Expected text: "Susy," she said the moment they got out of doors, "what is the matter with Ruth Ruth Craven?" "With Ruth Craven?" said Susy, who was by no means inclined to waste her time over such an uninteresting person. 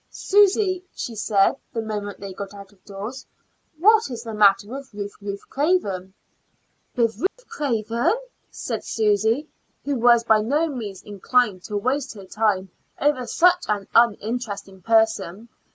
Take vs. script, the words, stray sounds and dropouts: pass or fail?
fail